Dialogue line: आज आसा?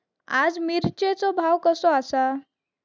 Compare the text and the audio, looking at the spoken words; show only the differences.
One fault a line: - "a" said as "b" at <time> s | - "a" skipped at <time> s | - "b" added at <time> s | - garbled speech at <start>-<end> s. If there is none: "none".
- "मिरचेचो भाव कसो" added at 0.6 s